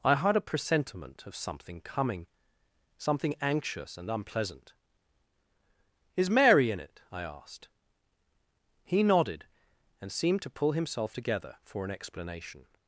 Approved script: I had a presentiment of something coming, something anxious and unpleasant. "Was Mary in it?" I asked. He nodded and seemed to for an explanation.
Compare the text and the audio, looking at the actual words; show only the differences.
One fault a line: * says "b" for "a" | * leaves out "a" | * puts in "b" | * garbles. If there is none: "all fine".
* says "Is" for "Was"
* puts in "pull himself together"